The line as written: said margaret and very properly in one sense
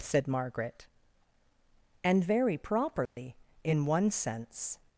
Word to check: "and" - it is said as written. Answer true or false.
true